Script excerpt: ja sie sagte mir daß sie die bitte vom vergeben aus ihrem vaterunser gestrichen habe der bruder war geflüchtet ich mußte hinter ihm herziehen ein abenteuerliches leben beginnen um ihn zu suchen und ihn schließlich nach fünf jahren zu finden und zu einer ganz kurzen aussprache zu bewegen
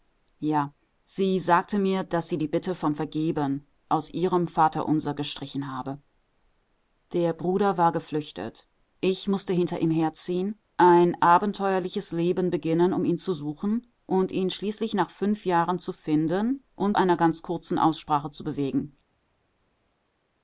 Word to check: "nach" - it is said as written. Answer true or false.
true